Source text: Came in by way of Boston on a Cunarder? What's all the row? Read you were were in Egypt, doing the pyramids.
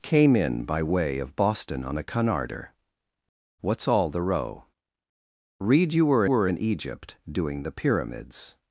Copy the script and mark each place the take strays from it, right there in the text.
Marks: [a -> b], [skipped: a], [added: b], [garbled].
Came in by way of Boston on a Cunarder? What's all the row? Read you were were in Egypt, doing the pyramids.